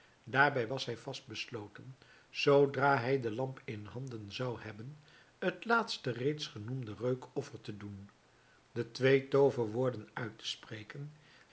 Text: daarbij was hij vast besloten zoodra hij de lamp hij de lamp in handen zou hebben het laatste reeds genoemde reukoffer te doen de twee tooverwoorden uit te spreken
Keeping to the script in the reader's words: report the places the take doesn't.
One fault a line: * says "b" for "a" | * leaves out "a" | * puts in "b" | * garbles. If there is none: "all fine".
* leaves out "hij de lamp"